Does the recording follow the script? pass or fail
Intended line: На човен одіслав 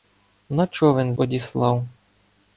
pass